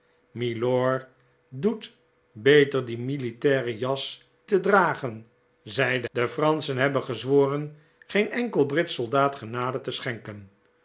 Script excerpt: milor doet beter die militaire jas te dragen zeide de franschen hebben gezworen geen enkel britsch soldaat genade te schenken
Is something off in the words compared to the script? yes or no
no